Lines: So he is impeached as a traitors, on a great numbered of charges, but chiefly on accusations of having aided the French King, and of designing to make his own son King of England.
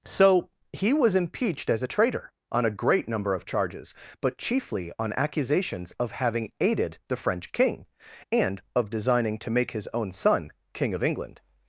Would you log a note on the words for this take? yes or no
yes